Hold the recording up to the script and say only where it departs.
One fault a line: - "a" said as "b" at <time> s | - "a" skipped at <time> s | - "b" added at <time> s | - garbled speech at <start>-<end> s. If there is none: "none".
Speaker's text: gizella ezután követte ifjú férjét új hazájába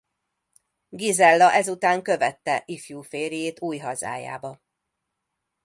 none